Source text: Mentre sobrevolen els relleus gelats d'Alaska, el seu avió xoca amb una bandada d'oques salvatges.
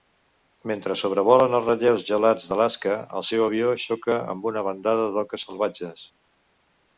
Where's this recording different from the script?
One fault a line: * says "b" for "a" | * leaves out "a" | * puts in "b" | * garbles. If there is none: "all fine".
all fine